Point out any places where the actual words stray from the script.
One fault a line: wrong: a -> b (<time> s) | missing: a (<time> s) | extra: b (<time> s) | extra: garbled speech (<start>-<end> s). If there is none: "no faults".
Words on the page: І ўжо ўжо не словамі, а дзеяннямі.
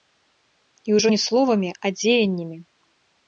missing: ўжо (1.1 s)